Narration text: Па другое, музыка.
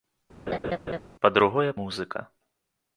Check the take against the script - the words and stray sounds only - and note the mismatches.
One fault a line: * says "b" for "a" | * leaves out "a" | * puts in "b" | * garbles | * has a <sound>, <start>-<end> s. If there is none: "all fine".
* has a laugh, 0.5-1.0 s